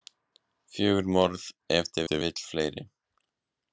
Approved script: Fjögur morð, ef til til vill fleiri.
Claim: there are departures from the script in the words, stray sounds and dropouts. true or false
false